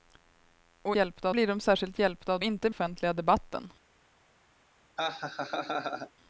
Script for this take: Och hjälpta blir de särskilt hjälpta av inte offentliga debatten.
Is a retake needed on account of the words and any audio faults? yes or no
yes